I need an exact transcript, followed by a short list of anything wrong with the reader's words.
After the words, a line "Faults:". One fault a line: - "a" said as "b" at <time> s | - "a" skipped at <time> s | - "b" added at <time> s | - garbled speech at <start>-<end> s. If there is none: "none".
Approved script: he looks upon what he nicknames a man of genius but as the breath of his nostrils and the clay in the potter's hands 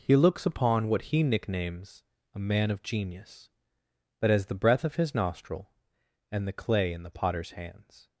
he looks upon what he nicknames a man of genius but as the breath of his nostril and the clay in the potter's hands
Faults:
- "nostrils" said as "nostril" at 5.1 s